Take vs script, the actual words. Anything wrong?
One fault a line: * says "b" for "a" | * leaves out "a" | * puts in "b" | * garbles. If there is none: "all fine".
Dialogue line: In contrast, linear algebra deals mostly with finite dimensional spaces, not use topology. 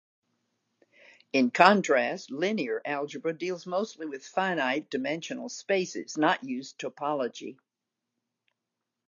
all fine